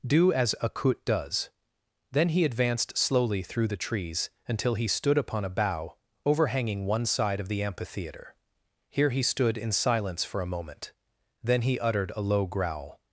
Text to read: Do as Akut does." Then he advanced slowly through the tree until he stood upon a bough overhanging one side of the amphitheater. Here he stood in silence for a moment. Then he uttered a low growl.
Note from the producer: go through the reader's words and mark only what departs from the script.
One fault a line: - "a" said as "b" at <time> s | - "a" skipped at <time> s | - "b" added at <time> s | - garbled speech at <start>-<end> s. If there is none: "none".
- "tree" said as "trees" at 3.8 s